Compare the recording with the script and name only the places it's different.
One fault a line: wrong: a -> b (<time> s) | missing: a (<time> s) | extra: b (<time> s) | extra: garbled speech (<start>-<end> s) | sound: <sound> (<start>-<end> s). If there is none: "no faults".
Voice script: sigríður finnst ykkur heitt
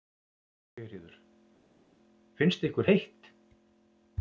no faults